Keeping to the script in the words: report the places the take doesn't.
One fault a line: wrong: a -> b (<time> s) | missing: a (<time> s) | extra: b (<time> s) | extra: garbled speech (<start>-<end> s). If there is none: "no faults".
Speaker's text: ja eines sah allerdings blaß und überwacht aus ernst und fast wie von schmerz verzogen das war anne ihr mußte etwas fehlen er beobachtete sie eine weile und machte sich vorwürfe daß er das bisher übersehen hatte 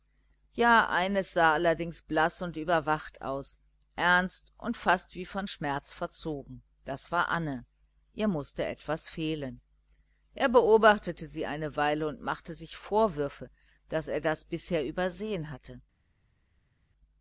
no faults